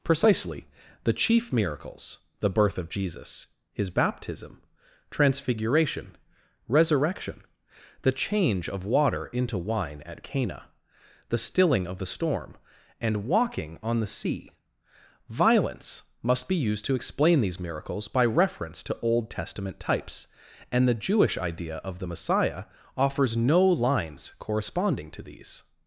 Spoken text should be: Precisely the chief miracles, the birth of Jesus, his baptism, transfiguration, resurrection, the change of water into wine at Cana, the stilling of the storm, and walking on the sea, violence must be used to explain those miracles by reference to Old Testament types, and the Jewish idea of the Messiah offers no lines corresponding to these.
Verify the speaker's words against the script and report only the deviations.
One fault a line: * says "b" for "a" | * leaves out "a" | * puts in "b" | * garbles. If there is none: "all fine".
* says "these" for "those"